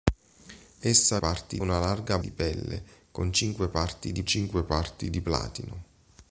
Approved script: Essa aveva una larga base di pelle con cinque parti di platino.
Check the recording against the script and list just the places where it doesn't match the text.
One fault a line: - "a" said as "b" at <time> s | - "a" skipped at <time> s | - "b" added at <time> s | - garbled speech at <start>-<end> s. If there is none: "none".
- "aveva" said as "parti" at 1.2 s
- "base" skipped at 2.2 s
- "cinque parti di" added at 4.2 s